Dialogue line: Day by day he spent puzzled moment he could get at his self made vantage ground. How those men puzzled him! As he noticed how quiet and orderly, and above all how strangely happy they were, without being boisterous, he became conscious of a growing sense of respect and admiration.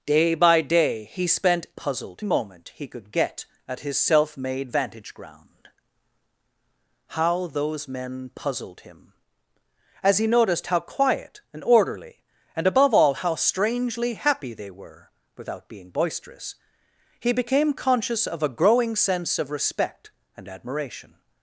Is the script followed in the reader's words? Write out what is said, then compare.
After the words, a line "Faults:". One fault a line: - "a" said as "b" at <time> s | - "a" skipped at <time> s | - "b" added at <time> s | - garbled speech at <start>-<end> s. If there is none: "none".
Day by day he spent puzzled moment he could get at his self made vantage ground. How those men puzzled him! As he noticed how quiet and orderly, and above all how strangely happy they were, without being boisterous, he became conscious of a growing sense of respect and admiration.
Faults:
none